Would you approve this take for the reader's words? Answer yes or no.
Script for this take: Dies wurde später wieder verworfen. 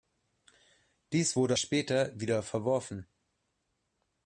yes